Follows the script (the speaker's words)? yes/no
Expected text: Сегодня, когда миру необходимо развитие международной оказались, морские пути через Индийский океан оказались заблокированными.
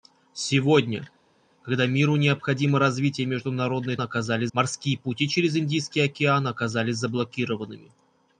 yes